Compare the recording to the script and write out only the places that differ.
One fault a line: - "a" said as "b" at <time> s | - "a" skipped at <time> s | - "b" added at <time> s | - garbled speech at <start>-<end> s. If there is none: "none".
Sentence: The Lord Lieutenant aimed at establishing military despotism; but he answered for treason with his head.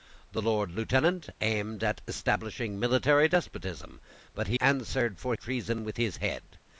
none